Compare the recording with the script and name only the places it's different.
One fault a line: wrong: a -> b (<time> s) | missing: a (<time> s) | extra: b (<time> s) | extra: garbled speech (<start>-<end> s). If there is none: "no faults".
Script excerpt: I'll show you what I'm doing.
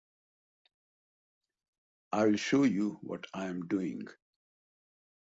no faults